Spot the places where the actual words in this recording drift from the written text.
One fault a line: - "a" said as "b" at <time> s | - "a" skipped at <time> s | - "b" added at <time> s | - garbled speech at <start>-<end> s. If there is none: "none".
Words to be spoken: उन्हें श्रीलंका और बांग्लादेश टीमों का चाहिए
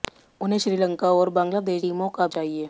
none